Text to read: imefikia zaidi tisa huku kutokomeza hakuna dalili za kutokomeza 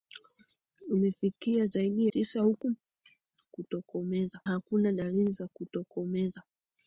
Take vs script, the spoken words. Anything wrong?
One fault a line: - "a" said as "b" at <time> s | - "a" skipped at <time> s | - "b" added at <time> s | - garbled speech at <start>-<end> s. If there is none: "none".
none